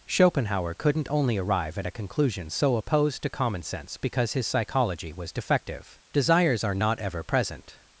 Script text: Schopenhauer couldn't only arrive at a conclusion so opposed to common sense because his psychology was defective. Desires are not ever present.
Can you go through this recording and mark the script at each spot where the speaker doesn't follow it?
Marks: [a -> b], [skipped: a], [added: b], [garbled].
Schopenhauer couldn't only arrive at a conclusion so opposed to common sense because his psychology was defective. Desires are not ever present.